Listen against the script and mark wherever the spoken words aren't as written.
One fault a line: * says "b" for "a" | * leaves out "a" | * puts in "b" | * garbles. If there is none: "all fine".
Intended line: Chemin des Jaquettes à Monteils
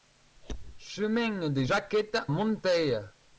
* leaves out "à"